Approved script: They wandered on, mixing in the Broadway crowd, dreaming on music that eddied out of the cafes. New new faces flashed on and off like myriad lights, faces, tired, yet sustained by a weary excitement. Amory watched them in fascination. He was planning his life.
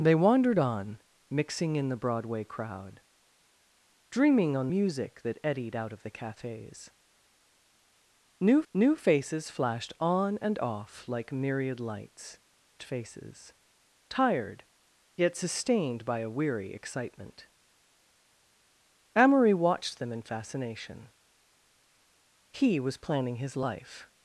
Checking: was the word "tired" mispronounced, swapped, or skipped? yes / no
no